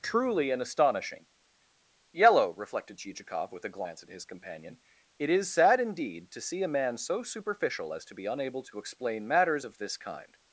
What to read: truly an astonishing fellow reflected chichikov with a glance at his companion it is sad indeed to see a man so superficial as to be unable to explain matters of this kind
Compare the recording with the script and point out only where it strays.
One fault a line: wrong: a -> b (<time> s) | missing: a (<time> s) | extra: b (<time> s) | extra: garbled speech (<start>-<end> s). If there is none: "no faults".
wrong: fellow -> yellow (2.1 s)